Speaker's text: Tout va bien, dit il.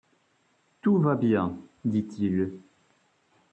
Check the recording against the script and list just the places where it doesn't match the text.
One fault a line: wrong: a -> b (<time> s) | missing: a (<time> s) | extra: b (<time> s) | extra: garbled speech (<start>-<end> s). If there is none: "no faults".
no faults